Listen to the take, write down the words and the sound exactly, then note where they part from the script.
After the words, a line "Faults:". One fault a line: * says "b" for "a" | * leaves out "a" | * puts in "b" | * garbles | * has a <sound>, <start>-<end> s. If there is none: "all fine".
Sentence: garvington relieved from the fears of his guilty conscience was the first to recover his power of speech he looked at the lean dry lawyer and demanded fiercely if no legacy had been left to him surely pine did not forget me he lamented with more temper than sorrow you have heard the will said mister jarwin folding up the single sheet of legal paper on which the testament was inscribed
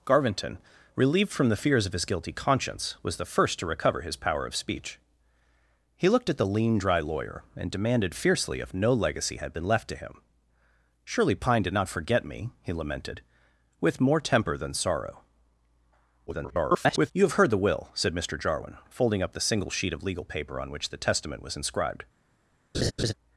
garvington relieved from the fears of his guilty conscience was the first to recover his power of speech he looked at the lean dry lawyer and demanded fiercely if no legacy had been left to him surely pine did not forget me he lamented with more temper than sorrow [garbled] you have heard the will said mister jarwin folding up the single sheet of legal paper on which the testament was inscribed
Faults:
* garbles
* has a laugh, 22.7-23.1 s